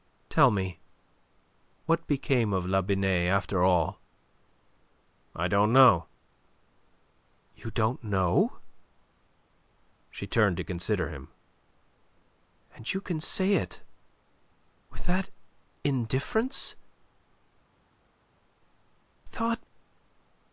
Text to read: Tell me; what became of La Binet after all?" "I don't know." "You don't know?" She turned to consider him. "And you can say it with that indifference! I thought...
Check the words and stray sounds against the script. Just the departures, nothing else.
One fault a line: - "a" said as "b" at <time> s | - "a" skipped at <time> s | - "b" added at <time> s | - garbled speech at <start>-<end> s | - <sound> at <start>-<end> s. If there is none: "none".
- "I" skipped at 16.8 s